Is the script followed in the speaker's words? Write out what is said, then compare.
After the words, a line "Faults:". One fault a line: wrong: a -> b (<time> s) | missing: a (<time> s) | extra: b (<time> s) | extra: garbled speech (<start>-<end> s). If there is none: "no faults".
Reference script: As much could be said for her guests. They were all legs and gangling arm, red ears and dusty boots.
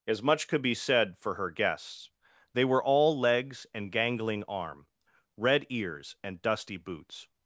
As much could be said for her guests. They were all legs and gangling arm, red ears and dusty boots.
Faults:
no faults